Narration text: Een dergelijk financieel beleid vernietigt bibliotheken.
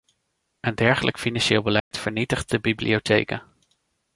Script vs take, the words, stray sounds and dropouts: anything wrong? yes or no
yes